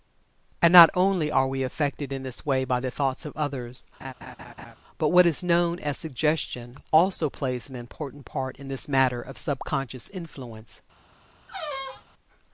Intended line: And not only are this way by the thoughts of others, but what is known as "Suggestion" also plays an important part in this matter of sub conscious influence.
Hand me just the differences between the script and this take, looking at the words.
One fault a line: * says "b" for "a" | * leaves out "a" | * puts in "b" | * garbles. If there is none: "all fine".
* puts in "we affected in"